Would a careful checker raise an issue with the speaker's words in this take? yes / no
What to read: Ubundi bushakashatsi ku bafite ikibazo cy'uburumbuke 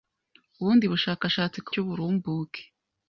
yes